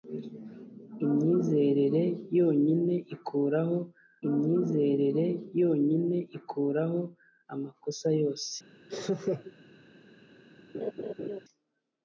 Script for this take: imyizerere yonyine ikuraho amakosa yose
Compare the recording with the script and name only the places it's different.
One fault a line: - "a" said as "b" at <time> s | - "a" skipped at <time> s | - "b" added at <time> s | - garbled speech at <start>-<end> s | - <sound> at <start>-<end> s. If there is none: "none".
- "imyizerere yonyine ikuraho" added at 4.3 s
- laugh at 8.9-9.5 s
- laugh at 10.7-11.4 s